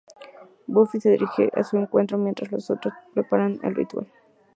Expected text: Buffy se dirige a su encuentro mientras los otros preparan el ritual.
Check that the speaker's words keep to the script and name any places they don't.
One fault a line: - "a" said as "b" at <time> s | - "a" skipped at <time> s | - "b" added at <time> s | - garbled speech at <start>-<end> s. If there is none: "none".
none